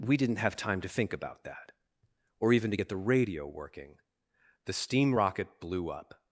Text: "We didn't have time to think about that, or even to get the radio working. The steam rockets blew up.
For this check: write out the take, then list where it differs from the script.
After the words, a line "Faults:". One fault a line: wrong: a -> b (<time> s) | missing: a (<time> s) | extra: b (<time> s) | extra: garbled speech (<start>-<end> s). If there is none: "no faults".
"We didn't have time to think about that, or even to get the radio working. The steam rocket blew up.
Faults:
wrong: rockets -> rocket (5.1 s)